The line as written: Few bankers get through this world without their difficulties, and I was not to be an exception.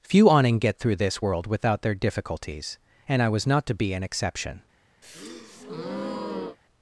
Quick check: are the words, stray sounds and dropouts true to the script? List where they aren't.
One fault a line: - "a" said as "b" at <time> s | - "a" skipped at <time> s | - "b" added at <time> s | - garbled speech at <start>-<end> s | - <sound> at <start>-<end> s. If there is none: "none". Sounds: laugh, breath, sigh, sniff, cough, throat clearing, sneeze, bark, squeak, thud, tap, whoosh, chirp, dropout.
- "bankers" said as "awning" at 0.3 s
- breath at 5.0-6.6 s